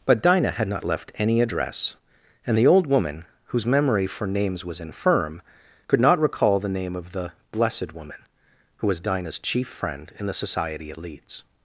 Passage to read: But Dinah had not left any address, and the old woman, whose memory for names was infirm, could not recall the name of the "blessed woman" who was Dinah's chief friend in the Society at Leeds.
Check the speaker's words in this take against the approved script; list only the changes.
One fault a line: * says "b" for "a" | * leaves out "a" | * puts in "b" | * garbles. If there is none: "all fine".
all fine